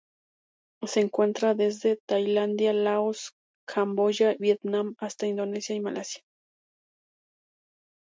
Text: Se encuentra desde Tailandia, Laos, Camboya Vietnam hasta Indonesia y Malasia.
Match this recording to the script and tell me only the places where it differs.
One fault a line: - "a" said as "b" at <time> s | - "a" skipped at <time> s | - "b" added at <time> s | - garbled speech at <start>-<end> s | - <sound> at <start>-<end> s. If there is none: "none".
none